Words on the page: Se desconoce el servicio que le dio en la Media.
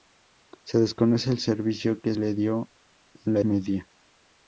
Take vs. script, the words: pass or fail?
pass